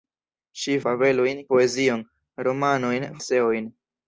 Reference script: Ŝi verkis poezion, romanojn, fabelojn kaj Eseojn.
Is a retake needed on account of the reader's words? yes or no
yes